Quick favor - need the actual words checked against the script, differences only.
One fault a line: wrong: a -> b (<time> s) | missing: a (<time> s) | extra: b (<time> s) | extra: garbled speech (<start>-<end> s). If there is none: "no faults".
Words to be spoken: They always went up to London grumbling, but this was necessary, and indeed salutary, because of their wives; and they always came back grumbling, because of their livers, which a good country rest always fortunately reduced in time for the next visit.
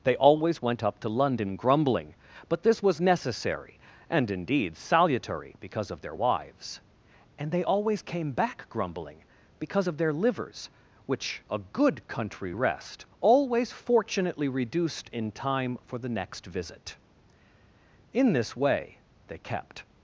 extra: In this way they kept (18.1 s)